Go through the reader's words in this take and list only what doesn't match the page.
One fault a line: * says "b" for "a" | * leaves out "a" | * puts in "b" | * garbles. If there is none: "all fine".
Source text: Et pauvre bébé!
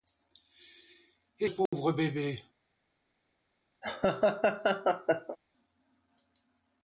all fine